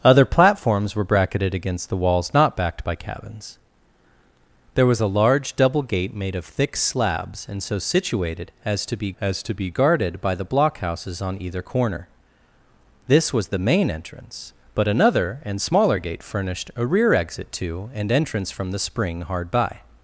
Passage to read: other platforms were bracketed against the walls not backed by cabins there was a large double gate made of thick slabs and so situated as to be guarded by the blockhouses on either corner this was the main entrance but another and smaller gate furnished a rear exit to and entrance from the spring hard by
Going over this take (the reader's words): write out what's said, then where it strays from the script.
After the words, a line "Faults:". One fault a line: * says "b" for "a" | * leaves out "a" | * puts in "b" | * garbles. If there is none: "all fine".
other platforms were bracketed against the walls not backed by cabins there was a large double gate made of thick slabs and so situated as to be as to be guarded by the blockhouses on either corner this was the main entrance but another and smaller gate furnished a rear exit to and entrance from the spring hard by
Faults:
* puts in "as to be"